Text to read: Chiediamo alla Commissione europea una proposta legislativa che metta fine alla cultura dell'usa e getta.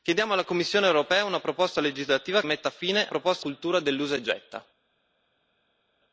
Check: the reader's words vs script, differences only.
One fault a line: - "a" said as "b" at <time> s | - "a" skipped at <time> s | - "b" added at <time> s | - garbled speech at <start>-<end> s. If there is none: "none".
- "che" skipped at 2.4 s
- "alla" said as "proposta" at 3.1 s